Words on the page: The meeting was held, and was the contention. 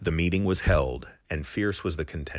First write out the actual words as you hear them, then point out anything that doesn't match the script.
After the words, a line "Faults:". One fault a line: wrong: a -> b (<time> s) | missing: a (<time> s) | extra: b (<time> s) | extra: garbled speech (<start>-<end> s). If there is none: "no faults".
The meeting was held, and fierce was the contention.
Faults:
extra: fierce (1.5 s)